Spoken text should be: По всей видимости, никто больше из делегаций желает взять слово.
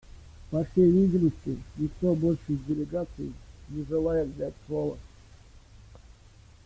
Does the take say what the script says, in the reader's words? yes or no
no